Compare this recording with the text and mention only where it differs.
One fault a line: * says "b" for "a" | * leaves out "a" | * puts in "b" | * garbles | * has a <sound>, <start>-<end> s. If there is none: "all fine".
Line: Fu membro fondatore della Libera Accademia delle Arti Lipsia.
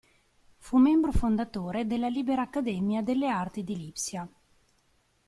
* puts in "di"